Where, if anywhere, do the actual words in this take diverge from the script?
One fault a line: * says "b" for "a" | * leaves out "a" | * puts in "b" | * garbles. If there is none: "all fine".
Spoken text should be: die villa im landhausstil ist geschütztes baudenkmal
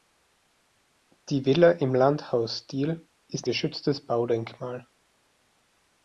all fine